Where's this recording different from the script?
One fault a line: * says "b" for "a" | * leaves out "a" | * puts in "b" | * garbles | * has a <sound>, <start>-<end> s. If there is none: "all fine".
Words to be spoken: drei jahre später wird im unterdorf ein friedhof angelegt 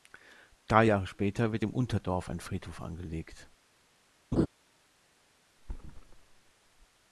* has a laugh, 4.3-4.5 s
* has a thud, 5.6-6.5 s